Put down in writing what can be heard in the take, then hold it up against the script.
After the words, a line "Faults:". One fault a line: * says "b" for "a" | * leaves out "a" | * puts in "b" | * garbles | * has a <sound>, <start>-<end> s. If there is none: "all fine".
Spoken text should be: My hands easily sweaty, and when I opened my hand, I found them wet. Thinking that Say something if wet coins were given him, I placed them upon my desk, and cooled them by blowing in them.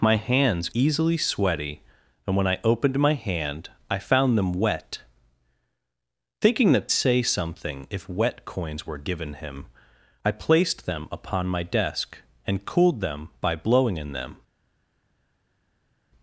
My hands easily sweaty, and when I opened my hand, I found them wet. Thinking that Say something if wet coins were given him, I placed them upon my desk, and cooled them by blowing in them.
Faults:
all fine